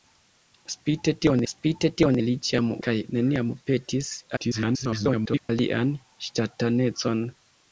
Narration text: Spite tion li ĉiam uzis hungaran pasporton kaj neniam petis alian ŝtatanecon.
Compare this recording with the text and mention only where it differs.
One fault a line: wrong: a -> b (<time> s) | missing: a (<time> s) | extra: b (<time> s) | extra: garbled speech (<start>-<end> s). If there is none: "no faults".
extra: spite tion (1.5 s)
missing: uzis hungaran pasporton (2.7 s)
extra: garbled speech (4.4-5.5 s)